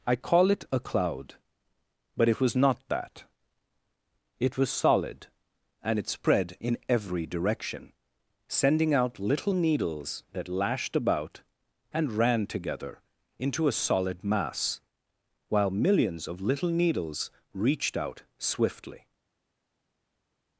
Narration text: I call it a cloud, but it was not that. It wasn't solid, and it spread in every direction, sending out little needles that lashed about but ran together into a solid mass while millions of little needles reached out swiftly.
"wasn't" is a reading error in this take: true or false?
true